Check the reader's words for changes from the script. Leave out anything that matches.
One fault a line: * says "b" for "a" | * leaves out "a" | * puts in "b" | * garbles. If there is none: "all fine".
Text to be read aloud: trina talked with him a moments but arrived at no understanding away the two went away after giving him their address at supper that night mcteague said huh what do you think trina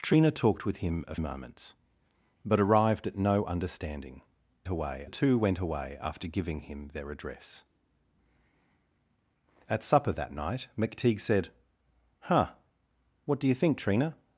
all fine